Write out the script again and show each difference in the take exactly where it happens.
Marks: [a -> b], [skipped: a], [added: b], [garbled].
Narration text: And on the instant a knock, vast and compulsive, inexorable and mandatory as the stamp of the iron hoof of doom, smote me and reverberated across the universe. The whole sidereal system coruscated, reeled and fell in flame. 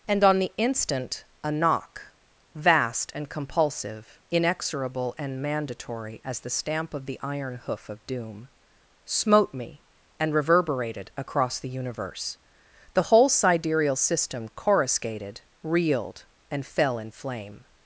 And on the instant a knock, vast and compulsive, inexorable and mandatory as the stamp of the iron hoof of doom, smote me and reverberated across the universe. The whole sidereal system coruscated, reeled and fell in flame.